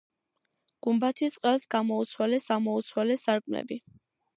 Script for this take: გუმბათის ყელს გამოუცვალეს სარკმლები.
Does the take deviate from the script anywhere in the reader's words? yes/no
yes